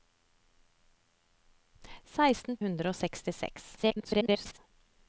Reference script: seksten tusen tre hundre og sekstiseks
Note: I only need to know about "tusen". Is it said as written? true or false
false